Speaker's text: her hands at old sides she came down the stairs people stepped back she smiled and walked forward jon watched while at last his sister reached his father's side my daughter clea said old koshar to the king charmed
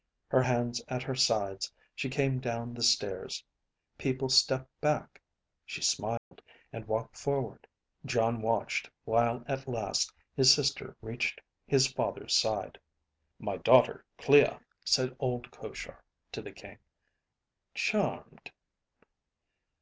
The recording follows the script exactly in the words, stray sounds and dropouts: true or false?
false